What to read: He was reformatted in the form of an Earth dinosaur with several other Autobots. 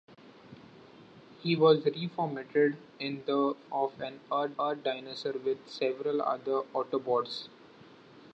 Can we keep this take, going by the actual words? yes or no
no